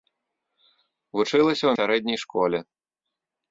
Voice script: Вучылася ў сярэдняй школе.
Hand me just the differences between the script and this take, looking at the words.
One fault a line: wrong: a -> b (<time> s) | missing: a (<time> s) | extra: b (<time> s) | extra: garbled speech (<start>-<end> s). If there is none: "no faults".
no faults